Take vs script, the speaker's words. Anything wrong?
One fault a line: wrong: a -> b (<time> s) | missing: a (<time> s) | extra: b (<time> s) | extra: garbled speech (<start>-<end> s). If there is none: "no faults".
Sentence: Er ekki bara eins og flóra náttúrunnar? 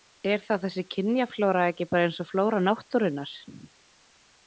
extra: þá þessi kynjaflóra (0.5 s)